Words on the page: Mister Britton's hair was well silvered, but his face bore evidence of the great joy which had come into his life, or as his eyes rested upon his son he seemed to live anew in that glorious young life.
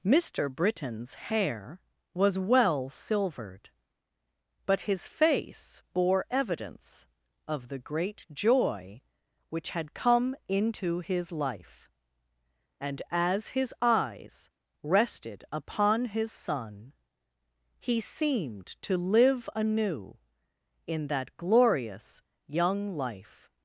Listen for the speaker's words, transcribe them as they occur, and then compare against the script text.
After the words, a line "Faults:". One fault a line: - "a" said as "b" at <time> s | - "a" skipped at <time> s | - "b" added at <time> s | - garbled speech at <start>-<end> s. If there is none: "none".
Mister Britton's hair was well silvered, but his face bore evidence of the great joy which had come into his life, and as his eyes rested upon his son he seemed to live anew in that glorious young life.
Faults:
- "or" said as "and" at 12.8 s